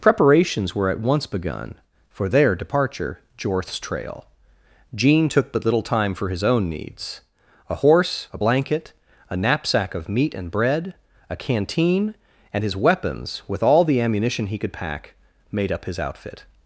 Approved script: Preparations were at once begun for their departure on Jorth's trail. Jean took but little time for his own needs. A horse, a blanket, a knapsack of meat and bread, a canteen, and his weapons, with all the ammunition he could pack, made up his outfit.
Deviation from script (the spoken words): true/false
true